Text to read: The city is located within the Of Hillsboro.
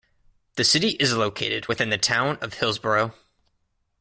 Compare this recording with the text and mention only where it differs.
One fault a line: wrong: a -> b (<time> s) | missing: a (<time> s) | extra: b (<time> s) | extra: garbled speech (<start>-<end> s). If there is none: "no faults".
extra: Town (2.0 s)